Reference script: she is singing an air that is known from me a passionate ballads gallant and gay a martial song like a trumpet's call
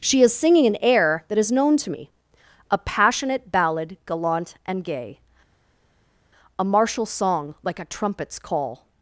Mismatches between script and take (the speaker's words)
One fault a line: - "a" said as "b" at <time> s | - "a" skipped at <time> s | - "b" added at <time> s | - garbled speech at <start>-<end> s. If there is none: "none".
- "from" said as "to" at 1.8 s
- "ballads" said as "ballad" at 3.5 s